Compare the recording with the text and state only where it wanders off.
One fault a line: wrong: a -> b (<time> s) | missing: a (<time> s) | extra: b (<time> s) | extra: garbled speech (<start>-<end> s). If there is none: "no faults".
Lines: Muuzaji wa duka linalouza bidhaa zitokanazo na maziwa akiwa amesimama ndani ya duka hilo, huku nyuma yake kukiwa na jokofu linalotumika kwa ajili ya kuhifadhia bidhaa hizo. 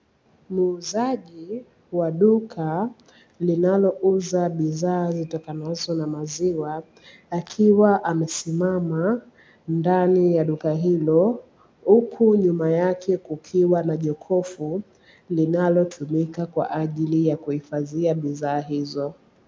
no faults